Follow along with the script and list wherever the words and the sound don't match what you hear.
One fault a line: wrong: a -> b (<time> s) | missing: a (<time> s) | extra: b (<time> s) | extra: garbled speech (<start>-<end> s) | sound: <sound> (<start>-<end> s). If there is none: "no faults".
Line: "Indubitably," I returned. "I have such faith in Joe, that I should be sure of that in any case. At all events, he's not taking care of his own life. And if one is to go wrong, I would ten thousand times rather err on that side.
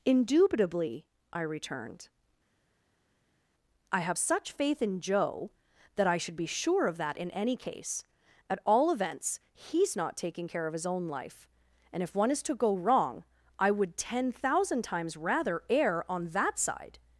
no faults